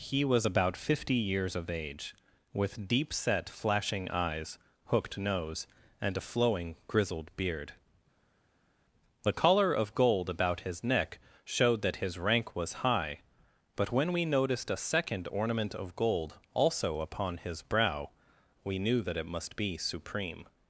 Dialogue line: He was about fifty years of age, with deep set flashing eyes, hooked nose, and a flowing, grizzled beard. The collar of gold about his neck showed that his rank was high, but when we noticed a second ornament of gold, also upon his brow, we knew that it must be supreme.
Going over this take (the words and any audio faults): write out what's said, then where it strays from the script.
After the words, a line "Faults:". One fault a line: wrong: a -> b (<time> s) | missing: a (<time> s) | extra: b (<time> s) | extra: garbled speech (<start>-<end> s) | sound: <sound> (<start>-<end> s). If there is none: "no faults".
He was about fifty years of age, with deep set flashing eyes, hooked nose, and a flowing, grizzled beard. The collar of gold about his neck showed that his rank was high, but when we noticed a second ornament of gold, also upon his brow, we knew that it must be supreme.
Faults:
no faults